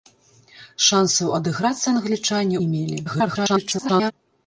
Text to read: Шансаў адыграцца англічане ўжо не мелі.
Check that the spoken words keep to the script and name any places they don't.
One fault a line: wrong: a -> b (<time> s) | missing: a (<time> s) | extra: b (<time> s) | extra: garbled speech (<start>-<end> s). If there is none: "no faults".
missing: ўжо (2.6 s)
extra: garbled speech (3.0-4.1 s)